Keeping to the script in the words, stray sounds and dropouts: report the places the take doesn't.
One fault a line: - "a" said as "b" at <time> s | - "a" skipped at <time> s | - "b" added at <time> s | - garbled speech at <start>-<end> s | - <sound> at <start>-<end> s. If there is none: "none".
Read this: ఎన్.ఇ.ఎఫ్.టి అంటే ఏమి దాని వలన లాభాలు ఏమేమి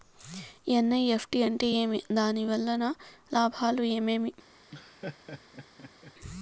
- laugh at 4.7-6.1 s